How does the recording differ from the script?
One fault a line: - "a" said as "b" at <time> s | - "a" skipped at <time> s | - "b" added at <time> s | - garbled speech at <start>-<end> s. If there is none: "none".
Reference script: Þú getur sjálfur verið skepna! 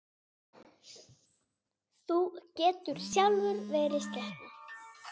none